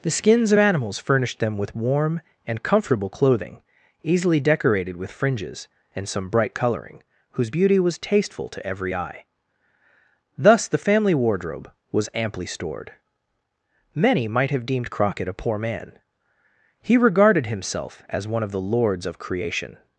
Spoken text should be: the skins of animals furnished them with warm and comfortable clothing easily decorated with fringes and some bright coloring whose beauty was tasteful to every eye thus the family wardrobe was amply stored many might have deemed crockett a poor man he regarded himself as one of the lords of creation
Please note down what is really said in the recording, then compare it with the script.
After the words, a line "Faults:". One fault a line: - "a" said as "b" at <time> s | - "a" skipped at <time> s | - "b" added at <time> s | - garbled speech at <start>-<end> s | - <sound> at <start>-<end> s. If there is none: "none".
the skins of animals furnished them with warm and comfortable clothing easily decorated with fringes and some bright coloring whose beauty was tasteful to every eye thus the family wardrobe was amply stored many might have deemed crockett a poor man he regarded himself as one of the lords of creation
Faults:
none